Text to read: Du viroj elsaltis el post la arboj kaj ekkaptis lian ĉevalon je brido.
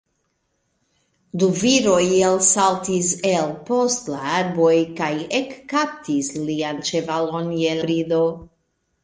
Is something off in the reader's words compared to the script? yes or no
no